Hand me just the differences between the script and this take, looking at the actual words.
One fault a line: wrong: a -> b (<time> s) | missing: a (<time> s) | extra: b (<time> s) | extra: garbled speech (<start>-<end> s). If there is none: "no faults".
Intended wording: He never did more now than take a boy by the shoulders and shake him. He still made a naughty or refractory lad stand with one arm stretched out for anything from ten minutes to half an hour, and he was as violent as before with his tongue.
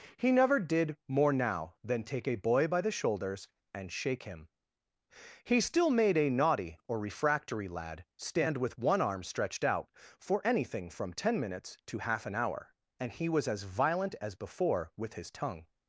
no faults